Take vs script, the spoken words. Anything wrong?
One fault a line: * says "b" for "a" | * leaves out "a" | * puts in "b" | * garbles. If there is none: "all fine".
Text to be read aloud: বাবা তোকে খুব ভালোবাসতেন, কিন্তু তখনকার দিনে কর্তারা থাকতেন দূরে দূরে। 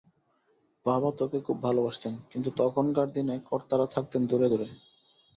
all fine